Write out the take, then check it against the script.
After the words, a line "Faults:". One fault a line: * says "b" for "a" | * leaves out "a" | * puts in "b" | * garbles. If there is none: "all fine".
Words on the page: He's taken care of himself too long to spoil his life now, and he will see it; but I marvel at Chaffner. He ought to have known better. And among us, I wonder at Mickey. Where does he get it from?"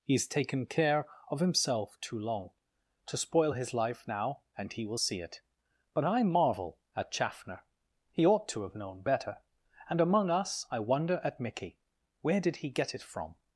He's taken care of himself too long to spoil his life now, and he will see it; but I marvel at Chaffner. He ought to have known better. And among us, I wonder at Mickey. Where did he get it from?"
Faults:
* says "did" for "does"